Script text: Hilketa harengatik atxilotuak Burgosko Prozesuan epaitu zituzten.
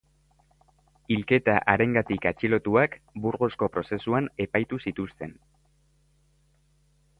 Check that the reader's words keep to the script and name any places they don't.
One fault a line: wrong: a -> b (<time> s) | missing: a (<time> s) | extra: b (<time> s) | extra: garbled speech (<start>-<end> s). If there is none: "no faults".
no faults